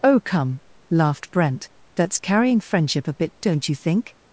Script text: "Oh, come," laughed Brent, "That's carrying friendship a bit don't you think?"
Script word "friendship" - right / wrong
right